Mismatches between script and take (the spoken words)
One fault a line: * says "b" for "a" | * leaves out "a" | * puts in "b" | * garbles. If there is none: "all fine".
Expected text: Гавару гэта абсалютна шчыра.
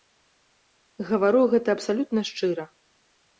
all fine